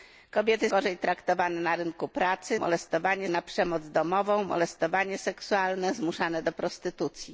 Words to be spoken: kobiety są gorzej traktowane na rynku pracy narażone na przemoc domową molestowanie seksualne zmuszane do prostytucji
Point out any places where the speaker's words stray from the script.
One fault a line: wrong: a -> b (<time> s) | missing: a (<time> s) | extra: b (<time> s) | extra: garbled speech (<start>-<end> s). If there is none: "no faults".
missing: są (0.7 s)
wrong: narażone -> molestowanie (2.5 s)